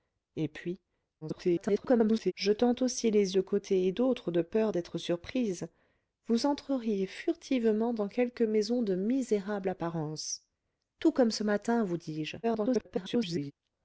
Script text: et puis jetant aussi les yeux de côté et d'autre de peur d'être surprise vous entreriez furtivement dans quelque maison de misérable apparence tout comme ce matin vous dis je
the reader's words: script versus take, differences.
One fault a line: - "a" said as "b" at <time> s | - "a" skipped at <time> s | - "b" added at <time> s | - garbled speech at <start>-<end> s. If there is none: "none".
- garbled speech at 1.2-2.3 s
- "yeux" skipped at 3.4 s
- garbled speech at 12.4-13.5 s